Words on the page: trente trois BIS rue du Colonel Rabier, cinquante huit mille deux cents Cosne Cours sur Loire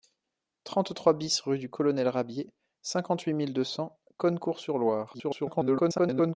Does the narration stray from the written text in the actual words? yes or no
yes